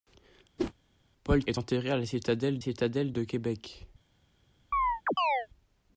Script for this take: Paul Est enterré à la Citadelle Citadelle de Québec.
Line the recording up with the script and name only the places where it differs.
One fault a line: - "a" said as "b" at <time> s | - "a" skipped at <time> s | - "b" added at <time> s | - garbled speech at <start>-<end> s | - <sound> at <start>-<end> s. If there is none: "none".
- whoosh at 0.6-0.7 s
- chirp at 4.7-5.5 s